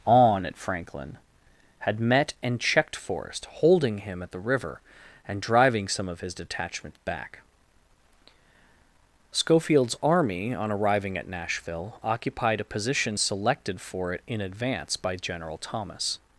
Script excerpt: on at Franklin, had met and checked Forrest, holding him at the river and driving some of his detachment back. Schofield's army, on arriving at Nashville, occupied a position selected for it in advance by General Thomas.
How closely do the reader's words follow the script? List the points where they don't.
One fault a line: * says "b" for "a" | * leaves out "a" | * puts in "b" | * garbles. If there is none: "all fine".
all fine